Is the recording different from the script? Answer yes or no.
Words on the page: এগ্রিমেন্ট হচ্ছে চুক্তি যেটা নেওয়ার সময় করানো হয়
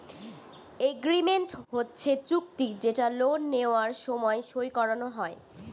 yes